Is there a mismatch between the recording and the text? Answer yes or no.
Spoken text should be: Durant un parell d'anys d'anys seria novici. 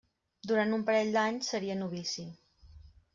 yes